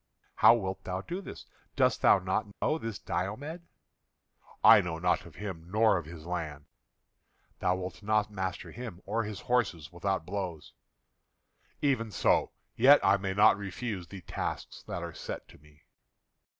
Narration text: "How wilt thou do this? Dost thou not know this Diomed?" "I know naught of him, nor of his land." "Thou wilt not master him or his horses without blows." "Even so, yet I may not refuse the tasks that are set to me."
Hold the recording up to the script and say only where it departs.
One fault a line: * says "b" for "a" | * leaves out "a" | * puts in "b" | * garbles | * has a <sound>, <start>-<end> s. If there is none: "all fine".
* has a dropout, 2.5-2.6 s